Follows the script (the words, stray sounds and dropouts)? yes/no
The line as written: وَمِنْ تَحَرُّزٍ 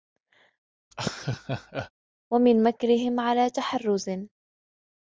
no